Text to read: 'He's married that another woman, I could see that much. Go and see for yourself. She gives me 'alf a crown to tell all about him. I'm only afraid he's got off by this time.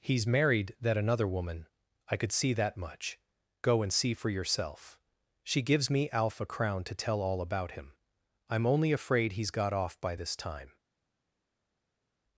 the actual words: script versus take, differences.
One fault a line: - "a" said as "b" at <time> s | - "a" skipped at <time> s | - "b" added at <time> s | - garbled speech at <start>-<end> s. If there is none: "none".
none